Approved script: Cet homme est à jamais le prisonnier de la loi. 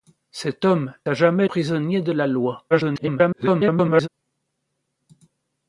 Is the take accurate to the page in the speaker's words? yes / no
no